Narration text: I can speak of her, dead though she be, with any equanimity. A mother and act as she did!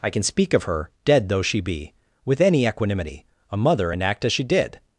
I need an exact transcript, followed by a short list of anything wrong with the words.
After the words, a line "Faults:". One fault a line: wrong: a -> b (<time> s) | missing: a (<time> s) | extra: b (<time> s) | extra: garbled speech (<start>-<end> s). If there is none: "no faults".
I can speak of her, dead though she be, with any equanimity. A mother and act as she did!
Faults:
no faults